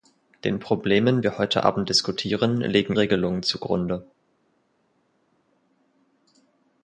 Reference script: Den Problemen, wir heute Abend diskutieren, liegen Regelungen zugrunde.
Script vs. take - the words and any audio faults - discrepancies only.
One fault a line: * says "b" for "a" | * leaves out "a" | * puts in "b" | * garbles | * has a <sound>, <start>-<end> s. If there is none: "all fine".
all fine